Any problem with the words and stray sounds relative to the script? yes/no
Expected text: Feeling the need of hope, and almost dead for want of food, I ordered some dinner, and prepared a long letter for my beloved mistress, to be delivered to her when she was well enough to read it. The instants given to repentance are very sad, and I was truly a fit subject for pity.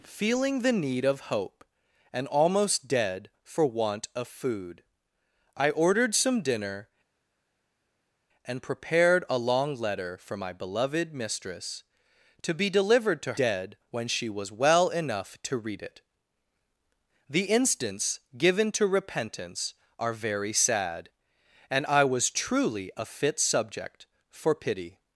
yes